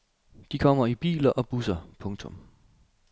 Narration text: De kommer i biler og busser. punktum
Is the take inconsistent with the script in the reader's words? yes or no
no